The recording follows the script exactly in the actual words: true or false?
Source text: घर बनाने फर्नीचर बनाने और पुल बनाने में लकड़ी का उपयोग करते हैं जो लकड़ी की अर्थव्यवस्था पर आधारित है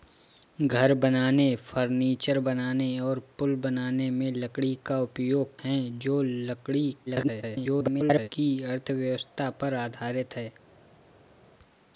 false